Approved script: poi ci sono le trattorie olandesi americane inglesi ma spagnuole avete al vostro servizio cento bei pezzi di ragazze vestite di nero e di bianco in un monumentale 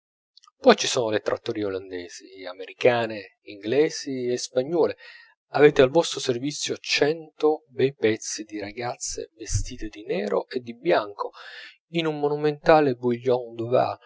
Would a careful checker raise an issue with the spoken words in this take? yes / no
yes